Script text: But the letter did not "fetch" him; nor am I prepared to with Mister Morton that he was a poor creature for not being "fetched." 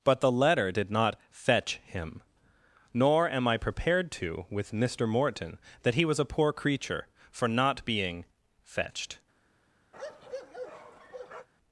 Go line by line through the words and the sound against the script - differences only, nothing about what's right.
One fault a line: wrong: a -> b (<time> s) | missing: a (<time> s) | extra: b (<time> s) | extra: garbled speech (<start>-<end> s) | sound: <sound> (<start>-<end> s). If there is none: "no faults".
sound: bark (9.9-11.5 s)